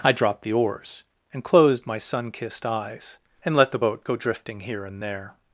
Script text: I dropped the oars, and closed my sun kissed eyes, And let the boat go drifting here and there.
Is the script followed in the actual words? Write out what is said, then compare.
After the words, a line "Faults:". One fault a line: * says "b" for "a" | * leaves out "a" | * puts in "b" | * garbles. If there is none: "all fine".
I dropped the oars, and closed my sun kissed eyes, And let the boat go drifting here and there.
Faults:
all fine